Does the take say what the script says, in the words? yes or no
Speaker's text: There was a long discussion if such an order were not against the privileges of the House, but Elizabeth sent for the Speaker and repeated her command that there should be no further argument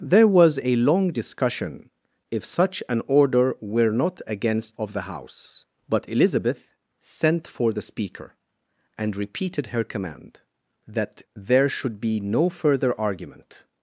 no